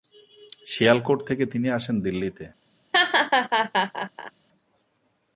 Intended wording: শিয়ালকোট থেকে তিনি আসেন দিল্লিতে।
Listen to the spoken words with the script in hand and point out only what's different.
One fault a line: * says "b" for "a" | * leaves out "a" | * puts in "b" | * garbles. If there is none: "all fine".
all fine